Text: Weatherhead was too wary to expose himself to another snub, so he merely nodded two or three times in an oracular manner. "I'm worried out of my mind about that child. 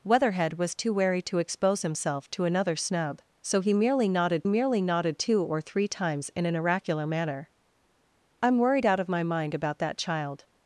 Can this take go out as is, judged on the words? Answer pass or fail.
fail